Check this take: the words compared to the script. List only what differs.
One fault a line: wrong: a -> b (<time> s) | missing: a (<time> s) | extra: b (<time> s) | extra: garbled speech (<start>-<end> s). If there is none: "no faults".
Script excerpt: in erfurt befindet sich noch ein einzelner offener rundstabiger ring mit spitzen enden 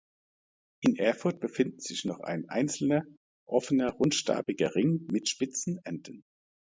no faults